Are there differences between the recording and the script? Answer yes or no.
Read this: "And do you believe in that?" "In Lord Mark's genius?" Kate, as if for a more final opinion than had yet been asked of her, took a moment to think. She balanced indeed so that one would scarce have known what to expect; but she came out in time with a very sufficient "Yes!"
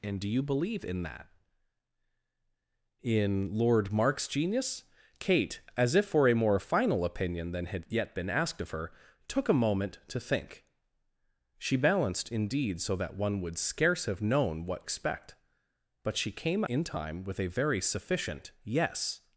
yes